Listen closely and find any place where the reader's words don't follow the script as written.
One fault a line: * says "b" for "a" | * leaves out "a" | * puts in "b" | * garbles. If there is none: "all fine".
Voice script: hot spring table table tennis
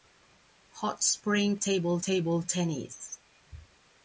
all fine